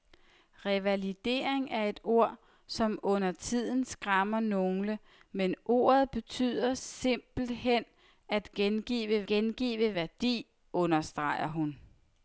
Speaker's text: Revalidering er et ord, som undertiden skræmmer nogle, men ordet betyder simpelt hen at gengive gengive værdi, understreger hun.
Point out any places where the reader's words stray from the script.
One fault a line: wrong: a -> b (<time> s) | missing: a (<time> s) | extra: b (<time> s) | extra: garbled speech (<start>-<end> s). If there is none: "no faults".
no faults